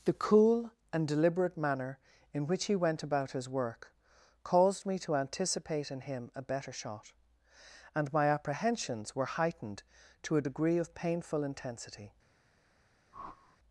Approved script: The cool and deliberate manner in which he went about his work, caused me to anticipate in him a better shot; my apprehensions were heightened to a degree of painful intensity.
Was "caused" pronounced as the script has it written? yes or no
yes